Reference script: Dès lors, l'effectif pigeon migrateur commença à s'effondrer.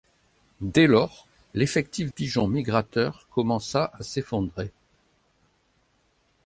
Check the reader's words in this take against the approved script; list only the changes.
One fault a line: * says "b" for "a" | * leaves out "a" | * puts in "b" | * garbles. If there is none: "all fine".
all fine